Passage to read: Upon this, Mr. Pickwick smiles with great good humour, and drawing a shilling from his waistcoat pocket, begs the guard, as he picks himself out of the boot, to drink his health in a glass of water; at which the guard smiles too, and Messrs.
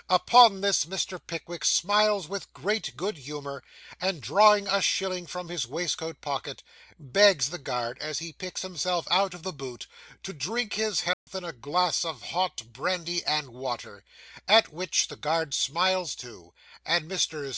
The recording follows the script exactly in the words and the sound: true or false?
false